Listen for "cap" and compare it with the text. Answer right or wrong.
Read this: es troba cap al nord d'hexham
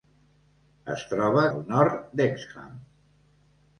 wrong